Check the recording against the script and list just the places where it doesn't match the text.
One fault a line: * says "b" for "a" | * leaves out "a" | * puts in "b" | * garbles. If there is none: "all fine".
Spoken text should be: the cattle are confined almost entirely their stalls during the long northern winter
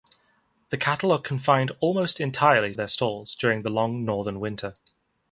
all fine